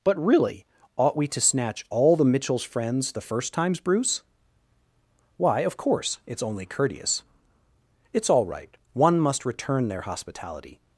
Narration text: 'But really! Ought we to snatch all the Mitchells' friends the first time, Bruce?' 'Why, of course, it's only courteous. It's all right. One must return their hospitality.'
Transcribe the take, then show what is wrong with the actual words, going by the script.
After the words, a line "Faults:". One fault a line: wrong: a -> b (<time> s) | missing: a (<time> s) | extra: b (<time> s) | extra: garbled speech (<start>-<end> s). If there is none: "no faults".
'But really! Ought we to snatch all the Mitchells' friends the first times, Bruce?' 'Why, of course, it's only courteous. It's all right. One must return their hospitality.'
Faults:
wrong: time -> times (3.5 s)